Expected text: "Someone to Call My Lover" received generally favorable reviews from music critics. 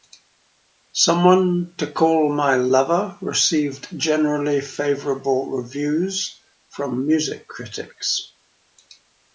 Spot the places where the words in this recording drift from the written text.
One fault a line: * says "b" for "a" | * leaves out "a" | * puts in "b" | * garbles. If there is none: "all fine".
all fine